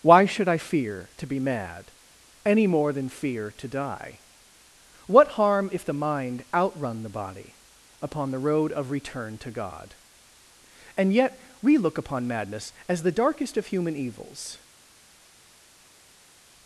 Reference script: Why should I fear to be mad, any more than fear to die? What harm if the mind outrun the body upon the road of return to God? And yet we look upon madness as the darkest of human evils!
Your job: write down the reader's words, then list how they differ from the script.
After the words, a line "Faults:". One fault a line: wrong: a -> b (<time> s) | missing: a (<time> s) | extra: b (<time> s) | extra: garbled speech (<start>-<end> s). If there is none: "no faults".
Why should I fear to be mad, any more than fear to die? What harm if the mind outrun the body upon the road of return to God? And yet we look upon madness as the darkest of human evils!
Faults:
no faults